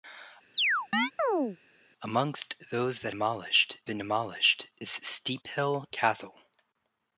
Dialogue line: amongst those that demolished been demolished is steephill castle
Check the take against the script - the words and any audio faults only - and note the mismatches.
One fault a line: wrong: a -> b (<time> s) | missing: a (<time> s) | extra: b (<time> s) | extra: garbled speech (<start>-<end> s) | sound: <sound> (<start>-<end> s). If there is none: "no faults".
sound: chirp (0.5-1.6 s)